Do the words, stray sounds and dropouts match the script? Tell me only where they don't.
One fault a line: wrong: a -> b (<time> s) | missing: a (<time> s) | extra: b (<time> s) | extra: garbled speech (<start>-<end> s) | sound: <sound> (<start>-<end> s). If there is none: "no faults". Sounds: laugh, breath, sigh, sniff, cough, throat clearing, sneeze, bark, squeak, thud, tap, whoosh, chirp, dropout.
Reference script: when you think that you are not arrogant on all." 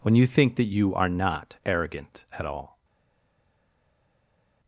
wrong: on -> at (2.3 s)